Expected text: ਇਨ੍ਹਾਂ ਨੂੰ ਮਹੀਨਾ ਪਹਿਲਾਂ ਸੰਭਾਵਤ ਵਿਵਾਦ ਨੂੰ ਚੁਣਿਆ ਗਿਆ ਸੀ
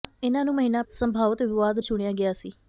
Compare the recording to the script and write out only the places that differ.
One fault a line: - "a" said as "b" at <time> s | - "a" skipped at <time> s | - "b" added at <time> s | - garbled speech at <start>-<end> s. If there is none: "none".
- "ਪਹਿਲਾਂ" skipped at 0.8 s
- "ਨੂੰ" skipped at 1.8 s